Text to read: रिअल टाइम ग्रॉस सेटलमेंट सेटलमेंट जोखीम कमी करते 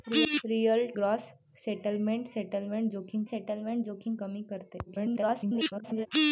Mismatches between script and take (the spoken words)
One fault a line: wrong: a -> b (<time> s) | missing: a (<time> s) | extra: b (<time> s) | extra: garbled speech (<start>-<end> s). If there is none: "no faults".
missing: टाइम (0.8 s)
extra: सेटलमेंट जोखीम (3.2 s)
extra: garbled speech (4.9-6.1 s)